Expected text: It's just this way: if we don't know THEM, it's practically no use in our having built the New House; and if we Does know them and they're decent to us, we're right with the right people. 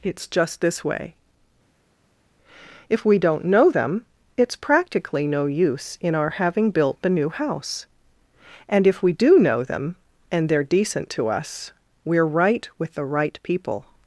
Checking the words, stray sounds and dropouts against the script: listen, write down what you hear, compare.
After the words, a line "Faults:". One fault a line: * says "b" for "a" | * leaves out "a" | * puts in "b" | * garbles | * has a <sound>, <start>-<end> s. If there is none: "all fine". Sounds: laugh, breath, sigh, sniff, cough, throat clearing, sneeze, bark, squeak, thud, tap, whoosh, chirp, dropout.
It's just this way: if we don't know THEM, it's practically no use in our having built the New House; and if we DO know them and they're decent to us, we're right with the right people.
Faults:
* says "DO" for "Does"